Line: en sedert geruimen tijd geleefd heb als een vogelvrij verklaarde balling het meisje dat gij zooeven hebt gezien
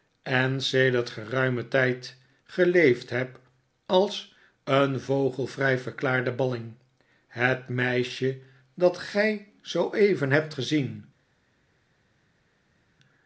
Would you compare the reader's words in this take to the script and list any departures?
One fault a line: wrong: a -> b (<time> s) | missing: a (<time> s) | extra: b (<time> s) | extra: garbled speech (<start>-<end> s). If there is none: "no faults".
no faults